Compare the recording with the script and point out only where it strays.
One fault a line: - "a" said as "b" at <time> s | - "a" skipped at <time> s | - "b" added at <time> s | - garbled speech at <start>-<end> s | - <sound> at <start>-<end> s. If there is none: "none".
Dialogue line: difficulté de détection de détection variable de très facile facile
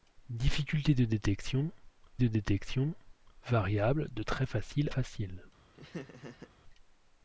- laugh at 5.7-6.5 s